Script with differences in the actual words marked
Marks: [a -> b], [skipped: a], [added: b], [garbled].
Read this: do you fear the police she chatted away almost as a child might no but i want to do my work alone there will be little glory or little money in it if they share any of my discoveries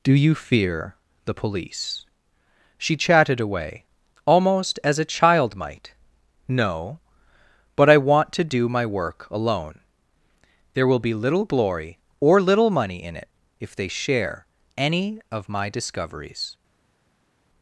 do you fear the police she chatted away almost as a child might no but i want to do my work alone there will be little glory or little money in it if they share any of my discoveries